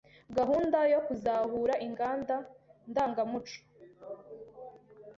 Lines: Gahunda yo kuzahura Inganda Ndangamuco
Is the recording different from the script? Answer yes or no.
no